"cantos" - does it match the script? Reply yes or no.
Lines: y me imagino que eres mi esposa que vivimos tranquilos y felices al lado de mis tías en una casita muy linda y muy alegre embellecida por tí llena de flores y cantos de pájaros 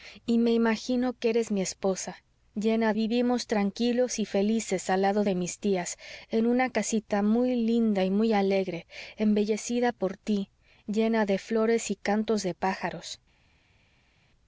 yes